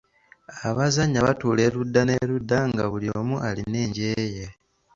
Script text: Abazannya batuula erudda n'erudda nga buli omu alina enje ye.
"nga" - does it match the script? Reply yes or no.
yes